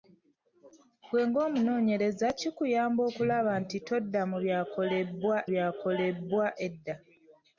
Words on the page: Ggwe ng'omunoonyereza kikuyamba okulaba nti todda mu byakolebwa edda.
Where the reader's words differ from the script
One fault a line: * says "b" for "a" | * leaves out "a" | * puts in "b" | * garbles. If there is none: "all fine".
* puts in "byakolebwa"